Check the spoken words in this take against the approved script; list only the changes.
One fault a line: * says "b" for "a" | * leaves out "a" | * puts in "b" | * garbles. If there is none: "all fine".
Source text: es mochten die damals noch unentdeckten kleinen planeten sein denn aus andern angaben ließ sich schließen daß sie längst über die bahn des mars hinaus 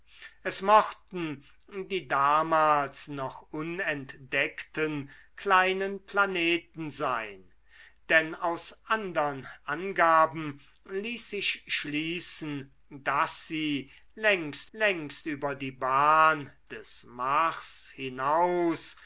* puts in "längst"